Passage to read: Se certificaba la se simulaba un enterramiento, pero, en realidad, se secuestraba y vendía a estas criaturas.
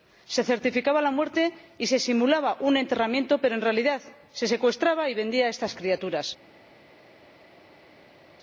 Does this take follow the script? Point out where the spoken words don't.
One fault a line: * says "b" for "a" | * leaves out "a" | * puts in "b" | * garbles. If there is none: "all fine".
* puts in "muerte y"